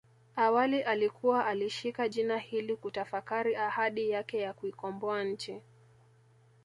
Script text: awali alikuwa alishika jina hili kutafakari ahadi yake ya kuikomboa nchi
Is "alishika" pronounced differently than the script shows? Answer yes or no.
no